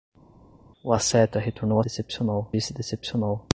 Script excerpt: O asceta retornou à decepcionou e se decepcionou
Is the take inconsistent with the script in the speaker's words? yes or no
no